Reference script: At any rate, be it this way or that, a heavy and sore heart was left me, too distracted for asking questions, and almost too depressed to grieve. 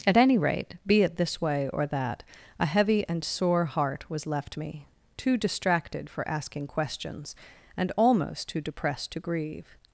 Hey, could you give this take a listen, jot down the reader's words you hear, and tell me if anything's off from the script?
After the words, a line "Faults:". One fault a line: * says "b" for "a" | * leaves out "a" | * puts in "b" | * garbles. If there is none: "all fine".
At any rate, be it this way or that, a heavy and sore heart was left me, too distracted for asking questions, and almost too depressed to grieve.
Faults:
all fine